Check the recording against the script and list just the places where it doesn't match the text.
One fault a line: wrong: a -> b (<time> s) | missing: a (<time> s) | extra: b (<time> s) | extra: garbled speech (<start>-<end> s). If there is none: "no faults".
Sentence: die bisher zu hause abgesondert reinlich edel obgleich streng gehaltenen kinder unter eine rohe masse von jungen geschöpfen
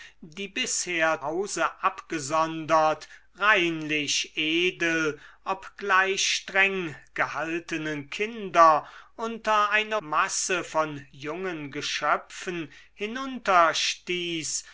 missing: zu (1.2 s)
missing: rohe (10.0 s)